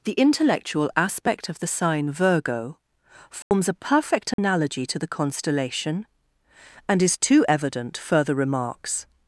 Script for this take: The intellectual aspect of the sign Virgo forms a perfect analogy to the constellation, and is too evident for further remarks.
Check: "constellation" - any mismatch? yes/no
no